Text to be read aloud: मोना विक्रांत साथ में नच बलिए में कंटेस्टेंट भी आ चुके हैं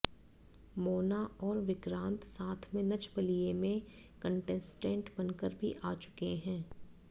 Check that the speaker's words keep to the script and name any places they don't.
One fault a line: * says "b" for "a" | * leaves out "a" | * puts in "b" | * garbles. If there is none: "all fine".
* puts in "और"
* puts in "बनकर"